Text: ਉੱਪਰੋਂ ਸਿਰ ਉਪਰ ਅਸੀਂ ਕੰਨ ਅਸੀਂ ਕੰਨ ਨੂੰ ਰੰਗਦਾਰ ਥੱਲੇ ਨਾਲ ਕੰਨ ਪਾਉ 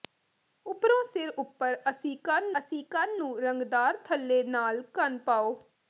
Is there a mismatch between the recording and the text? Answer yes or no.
no